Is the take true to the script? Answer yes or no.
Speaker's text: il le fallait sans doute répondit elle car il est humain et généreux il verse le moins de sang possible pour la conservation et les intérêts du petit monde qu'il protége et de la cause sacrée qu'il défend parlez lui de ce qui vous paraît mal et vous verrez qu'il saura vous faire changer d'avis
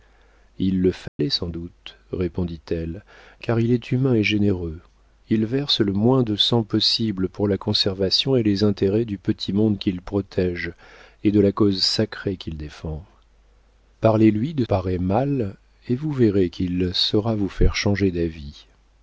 no